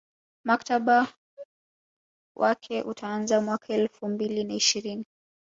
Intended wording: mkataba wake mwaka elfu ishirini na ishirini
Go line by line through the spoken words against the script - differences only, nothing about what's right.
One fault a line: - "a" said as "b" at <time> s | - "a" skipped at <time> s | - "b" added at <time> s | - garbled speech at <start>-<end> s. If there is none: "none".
- "utaanza" added at 2.8 s
- "ishirini" said as "mbili" at 4.1 s